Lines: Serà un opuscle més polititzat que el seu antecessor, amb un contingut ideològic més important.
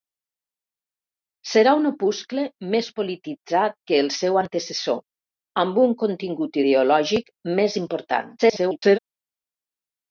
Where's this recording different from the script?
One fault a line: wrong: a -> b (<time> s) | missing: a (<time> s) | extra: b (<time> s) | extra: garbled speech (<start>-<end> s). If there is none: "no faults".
extra: garbled speech (8.4-9.0 s)